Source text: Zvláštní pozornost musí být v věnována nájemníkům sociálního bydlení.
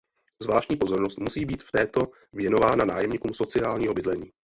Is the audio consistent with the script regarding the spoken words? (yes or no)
no